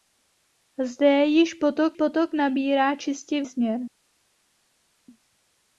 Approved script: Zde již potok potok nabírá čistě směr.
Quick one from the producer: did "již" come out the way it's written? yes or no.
yes